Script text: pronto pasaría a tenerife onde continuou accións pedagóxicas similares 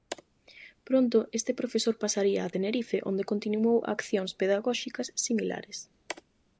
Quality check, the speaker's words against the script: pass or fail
fail